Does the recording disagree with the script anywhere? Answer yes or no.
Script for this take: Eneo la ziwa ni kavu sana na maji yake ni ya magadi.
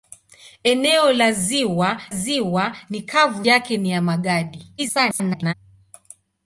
yes